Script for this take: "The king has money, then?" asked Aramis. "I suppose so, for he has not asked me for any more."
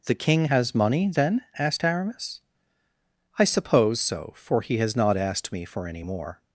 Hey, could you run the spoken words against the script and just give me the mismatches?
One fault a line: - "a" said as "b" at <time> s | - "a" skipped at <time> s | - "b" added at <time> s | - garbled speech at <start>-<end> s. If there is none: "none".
none